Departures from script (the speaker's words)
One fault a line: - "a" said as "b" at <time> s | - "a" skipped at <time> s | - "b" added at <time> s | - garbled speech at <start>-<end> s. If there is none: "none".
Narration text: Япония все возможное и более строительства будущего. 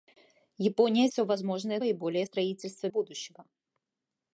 none